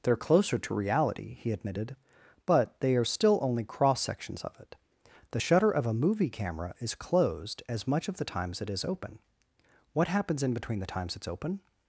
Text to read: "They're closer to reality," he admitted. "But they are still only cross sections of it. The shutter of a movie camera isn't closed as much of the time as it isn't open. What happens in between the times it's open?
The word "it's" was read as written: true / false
true